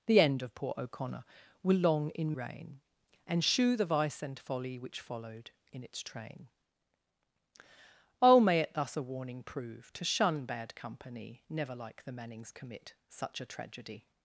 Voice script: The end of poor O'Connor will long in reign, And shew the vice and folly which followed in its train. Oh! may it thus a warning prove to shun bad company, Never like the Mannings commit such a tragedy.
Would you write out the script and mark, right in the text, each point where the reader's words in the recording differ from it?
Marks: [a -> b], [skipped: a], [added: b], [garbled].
The end of poor O'Connor will long in reign, And shew the vice and folly which followed in its train. Oh! may it thus a warning prove to shun bad company, Never like the Mannings commit such a tragedy.